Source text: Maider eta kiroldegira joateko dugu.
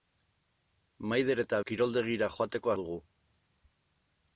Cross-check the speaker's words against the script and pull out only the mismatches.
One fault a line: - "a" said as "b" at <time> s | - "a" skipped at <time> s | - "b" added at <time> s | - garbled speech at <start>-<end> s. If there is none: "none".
none